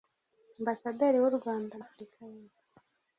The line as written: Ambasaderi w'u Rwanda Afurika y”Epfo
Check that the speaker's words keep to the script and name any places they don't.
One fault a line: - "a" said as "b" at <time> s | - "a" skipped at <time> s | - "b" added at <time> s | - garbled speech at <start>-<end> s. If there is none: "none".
none